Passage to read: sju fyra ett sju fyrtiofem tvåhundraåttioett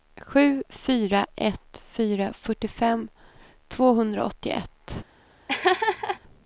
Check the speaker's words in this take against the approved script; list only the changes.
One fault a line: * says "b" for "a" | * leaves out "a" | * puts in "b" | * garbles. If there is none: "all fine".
* says "fyra" for "sju"